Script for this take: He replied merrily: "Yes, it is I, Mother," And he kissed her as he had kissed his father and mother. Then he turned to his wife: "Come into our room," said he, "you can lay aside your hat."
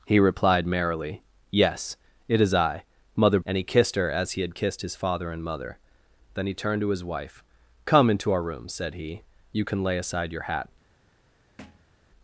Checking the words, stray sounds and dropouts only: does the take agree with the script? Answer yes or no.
no